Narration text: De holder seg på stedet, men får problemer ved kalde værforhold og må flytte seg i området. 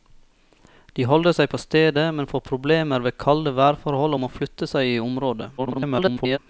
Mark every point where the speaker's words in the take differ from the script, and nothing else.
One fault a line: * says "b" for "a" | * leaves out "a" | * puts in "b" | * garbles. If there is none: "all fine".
* garbles